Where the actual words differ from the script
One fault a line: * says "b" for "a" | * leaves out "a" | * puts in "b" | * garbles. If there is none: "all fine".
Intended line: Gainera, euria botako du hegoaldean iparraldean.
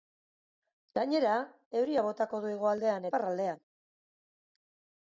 all fine